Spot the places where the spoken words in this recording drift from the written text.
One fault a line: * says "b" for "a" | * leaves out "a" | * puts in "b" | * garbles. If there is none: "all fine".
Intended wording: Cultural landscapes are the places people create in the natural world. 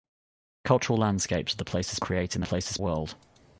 * leaves out "people"
* says "places" for "natural"